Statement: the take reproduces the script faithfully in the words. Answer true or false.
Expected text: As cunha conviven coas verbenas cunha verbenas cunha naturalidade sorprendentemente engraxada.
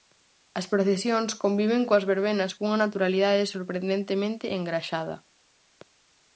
false